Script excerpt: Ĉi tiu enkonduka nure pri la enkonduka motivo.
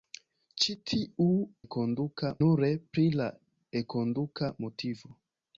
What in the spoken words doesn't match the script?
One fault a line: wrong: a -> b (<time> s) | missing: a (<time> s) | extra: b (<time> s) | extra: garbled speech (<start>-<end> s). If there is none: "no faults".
no faults